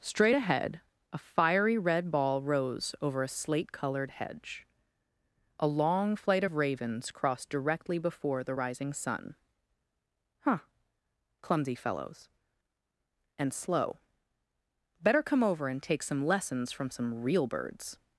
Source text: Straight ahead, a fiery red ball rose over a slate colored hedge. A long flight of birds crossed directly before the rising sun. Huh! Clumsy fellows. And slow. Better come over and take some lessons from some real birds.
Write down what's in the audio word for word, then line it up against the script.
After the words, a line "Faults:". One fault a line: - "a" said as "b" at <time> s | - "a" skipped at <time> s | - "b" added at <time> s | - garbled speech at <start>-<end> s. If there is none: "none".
Straight ahead, a fiery red ball rose over a slate colored hedge. A long flight of ravens crossed directly before the rising sun. Huh! Clumsy fellows. And slow. Better come over and take some lessons from some real birds.
Faults:
- "birds" said as "ravens" at 6.5 s